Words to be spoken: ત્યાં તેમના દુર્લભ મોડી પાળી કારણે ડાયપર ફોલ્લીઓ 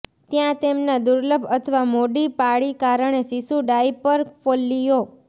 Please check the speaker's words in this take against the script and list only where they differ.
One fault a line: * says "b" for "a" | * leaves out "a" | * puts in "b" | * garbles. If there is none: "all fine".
* puts in "અથવા"
* puts in "શિશુ"